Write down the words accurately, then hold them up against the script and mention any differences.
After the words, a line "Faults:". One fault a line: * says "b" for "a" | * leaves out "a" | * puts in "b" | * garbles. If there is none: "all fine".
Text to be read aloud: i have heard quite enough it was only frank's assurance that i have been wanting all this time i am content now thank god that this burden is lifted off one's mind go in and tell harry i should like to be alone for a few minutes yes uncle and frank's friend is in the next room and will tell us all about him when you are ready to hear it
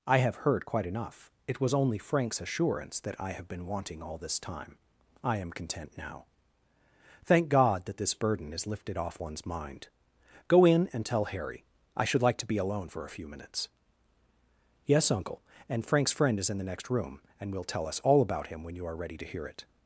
i have heard quite enough it was only frank's assurance that i have been wanting all this time i am content now thank god that this burden is lifted off one's mind go in and tell harry i should like to be alone for a few minutes yes uncle and frank's friend is in the next room and will tell us all about him when you are ready to hear it
Faults:
all fine